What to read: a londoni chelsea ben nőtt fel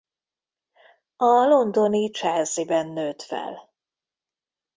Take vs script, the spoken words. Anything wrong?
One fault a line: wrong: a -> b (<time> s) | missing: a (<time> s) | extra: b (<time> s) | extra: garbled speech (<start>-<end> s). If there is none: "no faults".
no faults